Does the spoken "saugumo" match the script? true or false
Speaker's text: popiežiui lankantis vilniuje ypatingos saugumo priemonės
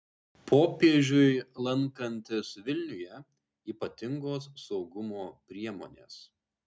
true